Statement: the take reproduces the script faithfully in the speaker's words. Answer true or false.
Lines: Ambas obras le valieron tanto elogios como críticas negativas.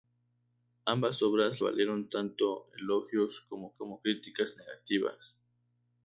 false